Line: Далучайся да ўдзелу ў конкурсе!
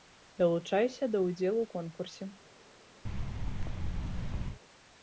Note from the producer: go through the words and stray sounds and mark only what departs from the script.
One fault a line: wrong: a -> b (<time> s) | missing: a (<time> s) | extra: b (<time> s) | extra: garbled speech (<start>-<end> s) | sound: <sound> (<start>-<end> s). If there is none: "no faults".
sound: thud (3.1-4.6 s)